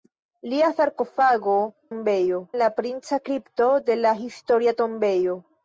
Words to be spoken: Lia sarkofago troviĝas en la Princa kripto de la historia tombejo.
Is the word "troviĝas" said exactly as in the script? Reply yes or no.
no